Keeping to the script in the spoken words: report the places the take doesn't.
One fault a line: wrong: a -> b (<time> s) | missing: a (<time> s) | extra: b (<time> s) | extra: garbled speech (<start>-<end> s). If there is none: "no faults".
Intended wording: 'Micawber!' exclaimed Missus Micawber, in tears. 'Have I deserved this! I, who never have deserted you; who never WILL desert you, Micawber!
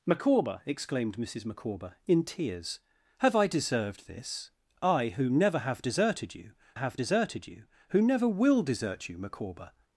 extra: have deserted you (6.7 s)